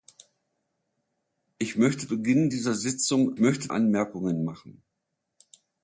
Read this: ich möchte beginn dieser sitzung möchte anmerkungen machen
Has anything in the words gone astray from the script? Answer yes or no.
no